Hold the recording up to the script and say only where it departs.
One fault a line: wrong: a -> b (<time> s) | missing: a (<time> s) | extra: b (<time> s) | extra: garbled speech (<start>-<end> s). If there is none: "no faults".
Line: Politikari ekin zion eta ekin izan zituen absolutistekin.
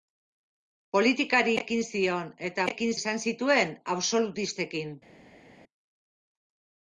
no faults